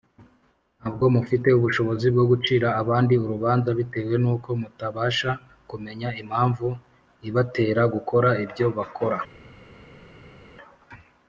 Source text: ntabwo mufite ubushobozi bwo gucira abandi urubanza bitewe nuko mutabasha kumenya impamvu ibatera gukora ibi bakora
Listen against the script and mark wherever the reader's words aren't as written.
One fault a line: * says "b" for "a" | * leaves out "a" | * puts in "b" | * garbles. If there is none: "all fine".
* says "ibyo" for "ibi"